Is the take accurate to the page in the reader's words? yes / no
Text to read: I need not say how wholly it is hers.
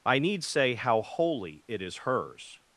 no